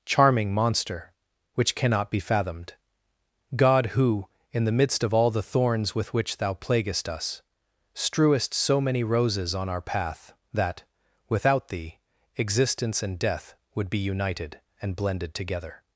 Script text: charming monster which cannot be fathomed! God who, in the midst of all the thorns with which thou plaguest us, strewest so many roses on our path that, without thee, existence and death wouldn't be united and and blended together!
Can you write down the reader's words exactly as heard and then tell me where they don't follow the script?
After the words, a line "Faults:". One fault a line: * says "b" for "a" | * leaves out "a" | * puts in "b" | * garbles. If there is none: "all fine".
charming monster which cannot be fathomed! God who, in the midst of all the thorns with which thou plaguest us, strewest so many roses on our path that, without thee, existence and death would be united and blended together!
Faults:
* says "would" for "wouldn't"
* leaves out "and"